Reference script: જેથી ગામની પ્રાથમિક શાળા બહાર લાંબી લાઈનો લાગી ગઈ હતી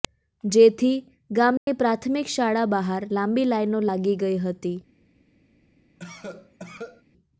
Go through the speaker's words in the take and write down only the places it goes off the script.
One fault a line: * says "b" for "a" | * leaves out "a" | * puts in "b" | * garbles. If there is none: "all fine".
all fine